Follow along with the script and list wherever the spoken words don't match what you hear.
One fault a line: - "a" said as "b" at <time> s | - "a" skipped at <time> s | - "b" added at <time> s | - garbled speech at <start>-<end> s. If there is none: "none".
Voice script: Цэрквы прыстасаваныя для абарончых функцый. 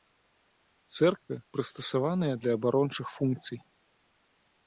none